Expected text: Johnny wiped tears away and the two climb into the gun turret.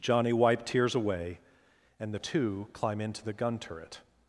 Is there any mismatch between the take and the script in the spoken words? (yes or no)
no